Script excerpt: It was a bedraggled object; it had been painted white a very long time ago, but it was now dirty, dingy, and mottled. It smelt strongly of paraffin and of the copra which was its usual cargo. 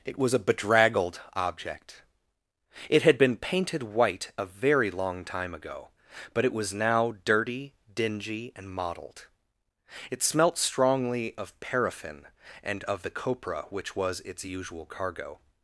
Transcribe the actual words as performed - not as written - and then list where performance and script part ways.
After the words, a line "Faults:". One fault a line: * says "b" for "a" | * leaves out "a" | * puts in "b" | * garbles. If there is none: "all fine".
It was a bedraggled object; it had been painted white a very long time ago, but it was now dirty, dingy, and mottled. It smelt strongly of paraffin and of the copra which was its usual cargo.
Faults:
all fine